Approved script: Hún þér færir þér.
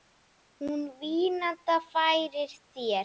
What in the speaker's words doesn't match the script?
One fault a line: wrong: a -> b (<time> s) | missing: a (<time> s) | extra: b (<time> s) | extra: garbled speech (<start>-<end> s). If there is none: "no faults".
wrong: þér -> vínanda (1.0 s)